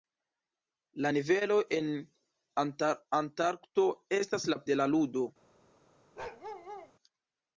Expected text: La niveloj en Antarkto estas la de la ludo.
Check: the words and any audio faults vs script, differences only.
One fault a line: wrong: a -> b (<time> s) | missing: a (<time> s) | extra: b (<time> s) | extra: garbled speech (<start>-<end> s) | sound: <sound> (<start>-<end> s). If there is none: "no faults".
sound: bark (6.2-6.9 s)